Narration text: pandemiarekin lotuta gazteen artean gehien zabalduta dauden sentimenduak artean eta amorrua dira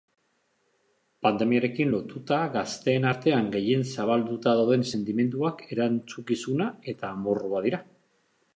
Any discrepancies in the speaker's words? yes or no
yes